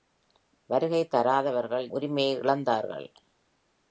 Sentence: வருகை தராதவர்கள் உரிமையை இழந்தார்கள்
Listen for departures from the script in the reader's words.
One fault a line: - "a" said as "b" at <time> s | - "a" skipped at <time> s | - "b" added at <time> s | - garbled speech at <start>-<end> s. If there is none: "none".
none